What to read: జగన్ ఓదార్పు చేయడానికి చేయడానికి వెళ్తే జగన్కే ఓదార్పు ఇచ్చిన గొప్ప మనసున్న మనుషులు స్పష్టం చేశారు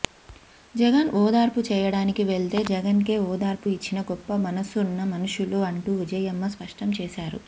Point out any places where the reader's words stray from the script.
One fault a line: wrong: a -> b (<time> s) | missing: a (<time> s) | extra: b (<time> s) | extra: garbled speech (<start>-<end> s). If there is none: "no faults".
missing: చేయడానికి (2.2 s)
extra: అంటూ విజయమ్మ (5.7 s)